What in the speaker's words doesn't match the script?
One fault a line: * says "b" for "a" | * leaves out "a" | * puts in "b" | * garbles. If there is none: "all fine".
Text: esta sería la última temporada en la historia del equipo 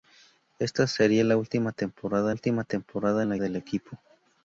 * puts in "última temporada"
* leaves out "historia"